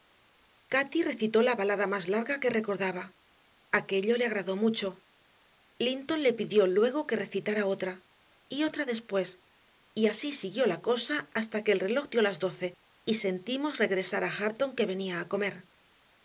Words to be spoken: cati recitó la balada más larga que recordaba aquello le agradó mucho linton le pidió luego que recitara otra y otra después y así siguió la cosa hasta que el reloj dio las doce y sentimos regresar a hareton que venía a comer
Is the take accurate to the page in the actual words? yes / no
yes